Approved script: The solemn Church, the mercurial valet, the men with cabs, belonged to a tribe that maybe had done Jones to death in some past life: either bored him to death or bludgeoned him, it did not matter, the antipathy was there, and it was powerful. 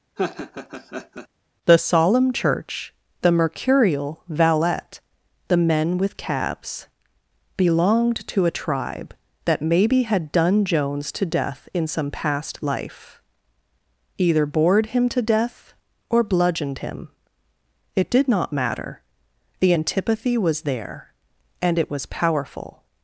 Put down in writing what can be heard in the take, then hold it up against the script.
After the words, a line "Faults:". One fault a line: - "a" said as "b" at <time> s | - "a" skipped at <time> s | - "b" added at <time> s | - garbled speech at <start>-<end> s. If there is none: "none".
The solemn Church, the mercurial valet, the men with cabs, belonged to a tribe that maybe had done Jones to death in some past life: either bored him to death or bludgeoned him, it did not matter, the antipathy was there, and it was powerful.
Faults:
none